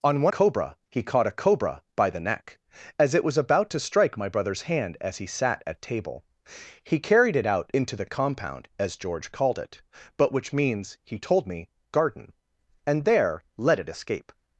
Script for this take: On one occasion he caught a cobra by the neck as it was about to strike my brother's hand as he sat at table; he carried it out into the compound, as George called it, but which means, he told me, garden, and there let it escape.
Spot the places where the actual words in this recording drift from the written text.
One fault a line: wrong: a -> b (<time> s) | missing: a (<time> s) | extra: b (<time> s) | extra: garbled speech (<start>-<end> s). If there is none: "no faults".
wrong: occasion -> cobra (0.3 s)